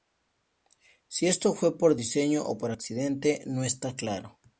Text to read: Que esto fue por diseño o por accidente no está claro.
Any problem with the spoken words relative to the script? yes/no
yes